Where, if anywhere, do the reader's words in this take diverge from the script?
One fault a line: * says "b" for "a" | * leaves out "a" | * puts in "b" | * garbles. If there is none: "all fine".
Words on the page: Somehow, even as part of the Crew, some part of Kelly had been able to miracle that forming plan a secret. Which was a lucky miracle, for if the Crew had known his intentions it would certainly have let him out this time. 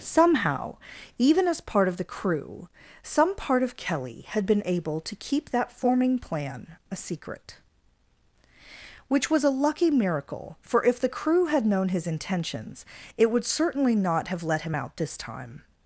* says "keep" for "miracle"
* puts in "not"